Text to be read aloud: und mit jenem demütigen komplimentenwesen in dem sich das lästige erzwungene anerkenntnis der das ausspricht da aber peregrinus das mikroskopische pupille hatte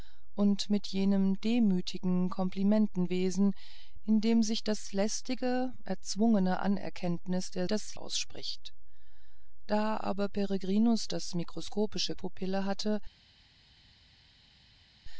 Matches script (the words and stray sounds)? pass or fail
pass